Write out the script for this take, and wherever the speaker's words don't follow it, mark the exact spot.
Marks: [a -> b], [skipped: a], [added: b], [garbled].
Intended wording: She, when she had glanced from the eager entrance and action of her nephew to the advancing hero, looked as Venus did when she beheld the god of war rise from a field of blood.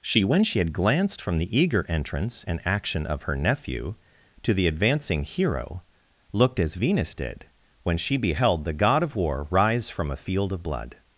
She, when she had glanced from the eager entrance and action of her nephew to the advancing hero, looked as Venus did when she beheld the god of war rise from a field of blood.